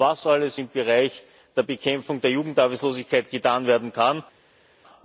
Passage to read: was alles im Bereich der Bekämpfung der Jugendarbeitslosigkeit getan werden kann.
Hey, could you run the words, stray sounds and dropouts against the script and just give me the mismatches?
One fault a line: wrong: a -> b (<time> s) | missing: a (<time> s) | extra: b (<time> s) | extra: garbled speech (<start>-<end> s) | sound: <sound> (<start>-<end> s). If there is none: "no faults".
no faults